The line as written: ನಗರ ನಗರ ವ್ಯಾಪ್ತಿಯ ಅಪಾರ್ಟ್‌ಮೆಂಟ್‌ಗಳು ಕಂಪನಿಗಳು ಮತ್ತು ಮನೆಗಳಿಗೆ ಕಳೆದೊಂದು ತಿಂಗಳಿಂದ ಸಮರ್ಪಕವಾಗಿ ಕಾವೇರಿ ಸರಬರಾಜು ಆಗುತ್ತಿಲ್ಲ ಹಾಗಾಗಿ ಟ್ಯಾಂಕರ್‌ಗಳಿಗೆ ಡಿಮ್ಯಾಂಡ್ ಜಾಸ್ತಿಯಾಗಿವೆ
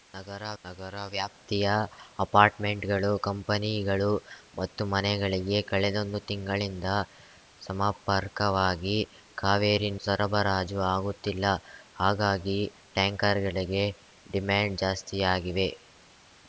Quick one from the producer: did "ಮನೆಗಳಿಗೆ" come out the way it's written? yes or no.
yes